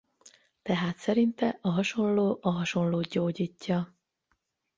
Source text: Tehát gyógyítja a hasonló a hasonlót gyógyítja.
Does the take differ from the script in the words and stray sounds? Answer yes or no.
yes